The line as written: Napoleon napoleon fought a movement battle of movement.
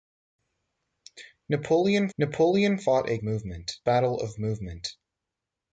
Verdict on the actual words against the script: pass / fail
pass